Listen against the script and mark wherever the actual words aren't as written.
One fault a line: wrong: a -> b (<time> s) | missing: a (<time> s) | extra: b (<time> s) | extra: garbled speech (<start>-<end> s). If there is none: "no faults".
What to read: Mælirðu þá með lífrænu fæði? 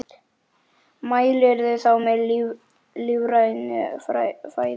no faults